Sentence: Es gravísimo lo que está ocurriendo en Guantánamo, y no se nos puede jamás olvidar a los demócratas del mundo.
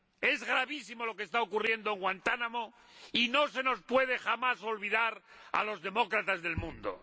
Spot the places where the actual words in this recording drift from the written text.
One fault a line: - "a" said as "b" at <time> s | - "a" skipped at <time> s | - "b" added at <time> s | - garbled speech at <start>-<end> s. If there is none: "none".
none